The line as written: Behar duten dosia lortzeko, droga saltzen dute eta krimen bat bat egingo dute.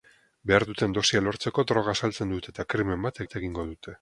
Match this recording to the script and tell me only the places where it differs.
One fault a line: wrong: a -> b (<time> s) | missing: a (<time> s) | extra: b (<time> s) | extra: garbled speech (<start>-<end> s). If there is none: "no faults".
no faults